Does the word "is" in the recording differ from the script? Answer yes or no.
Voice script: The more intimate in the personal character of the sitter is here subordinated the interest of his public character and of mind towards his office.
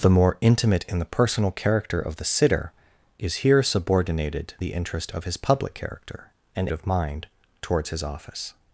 no